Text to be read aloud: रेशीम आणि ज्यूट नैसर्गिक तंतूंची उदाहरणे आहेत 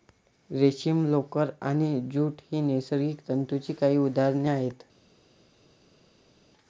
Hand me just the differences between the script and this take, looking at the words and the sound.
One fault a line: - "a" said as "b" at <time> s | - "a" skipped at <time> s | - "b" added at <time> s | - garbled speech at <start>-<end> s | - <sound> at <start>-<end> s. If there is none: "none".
- "लोकर" added at 1.1 s
- "ही" added at 2.5 s
- "काही" added at 3.8 s